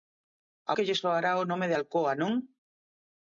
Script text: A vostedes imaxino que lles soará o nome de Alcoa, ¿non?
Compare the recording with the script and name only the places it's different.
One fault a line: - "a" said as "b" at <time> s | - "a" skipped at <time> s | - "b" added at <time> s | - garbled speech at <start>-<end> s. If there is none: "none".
- "vostedes imaxino" skipped at 0.7 s